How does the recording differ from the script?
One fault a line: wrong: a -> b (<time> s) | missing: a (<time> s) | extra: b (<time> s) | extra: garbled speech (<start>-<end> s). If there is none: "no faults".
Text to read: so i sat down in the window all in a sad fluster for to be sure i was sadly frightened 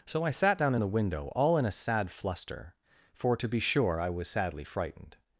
no faults